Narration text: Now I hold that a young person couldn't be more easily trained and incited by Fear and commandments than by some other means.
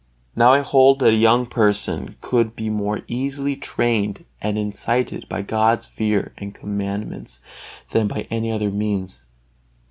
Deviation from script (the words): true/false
true